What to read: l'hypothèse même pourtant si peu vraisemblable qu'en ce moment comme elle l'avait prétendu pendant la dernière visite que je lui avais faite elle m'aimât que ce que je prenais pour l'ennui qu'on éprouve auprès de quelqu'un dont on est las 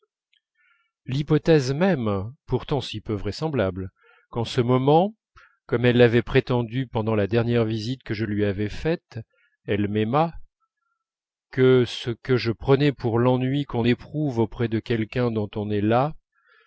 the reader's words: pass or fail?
pass